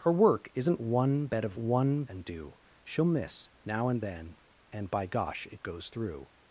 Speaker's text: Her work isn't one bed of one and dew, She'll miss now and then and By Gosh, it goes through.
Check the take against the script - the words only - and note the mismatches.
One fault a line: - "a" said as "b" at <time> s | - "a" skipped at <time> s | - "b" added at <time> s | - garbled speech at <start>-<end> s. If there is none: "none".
none